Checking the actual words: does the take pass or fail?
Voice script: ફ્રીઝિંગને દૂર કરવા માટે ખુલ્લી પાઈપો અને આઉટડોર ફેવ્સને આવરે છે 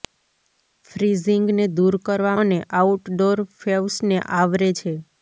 fail